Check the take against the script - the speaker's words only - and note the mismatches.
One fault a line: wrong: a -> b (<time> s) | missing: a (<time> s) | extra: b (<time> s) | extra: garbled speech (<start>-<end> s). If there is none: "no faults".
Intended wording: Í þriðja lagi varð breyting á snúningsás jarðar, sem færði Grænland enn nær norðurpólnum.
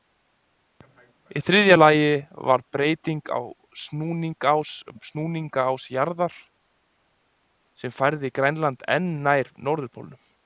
no faults